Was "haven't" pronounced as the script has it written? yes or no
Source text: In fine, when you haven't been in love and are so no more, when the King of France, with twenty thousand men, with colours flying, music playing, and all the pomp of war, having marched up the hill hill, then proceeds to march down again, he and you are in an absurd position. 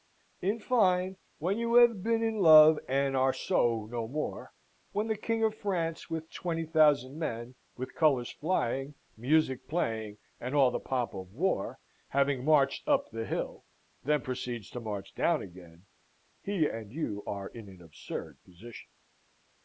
no